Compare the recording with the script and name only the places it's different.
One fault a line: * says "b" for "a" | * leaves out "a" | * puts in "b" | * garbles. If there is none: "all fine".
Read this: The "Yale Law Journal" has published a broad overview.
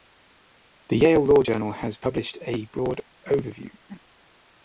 all fine